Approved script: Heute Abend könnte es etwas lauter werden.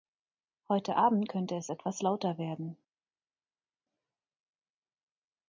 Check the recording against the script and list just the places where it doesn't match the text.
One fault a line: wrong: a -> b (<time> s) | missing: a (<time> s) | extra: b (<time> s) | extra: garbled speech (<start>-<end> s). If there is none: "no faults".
no faults